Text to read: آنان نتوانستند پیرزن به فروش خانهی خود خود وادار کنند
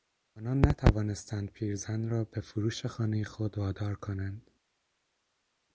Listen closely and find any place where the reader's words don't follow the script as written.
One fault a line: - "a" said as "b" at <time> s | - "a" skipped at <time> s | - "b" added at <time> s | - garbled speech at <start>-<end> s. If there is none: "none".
- "را" added at 2.1 s
- "خود" skipped at 3.6 s